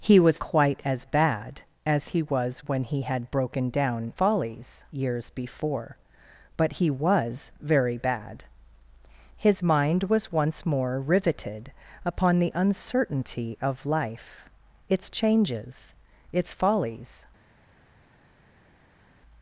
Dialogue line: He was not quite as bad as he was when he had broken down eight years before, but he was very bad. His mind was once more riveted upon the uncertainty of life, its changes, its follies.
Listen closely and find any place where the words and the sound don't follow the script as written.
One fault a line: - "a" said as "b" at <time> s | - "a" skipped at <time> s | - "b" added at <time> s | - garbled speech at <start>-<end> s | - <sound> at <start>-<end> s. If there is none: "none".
- "not" skipped at 0.4 s
- "eight" said as "follies" at 4.1 s